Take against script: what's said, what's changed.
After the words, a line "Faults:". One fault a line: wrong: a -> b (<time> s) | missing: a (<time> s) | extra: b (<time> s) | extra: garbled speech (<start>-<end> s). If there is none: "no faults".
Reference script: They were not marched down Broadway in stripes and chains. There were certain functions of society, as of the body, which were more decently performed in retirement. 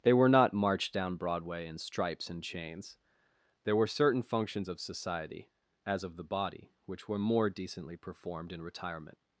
They were not marched down Broadway in stripes and chains. There were certain functions of society, as of the body, which were more decently performed in retirement.
Faults:
no faults